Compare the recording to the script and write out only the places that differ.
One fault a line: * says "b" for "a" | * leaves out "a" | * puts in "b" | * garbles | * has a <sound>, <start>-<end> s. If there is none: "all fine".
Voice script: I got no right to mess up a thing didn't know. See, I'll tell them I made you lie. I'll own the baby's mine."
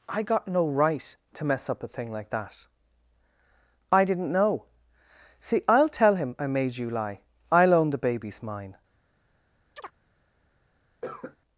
* puts in "like that I"
* says "him" for "them"
* has a chirp, 9.8-9.9 s
* has a cough, 11.0-11.4 s